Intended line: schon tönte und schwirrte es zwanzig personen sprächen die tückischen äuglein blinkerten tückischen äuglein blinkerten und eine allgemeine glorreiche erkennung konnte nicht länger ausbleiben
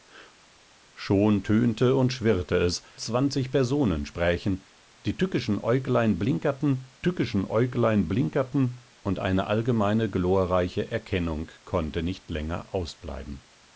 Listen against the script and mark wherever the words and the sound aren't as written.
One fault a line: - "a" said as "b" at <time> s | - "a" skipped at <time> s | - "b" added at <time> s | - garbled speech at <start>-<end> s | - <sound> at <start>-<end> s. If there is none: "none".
none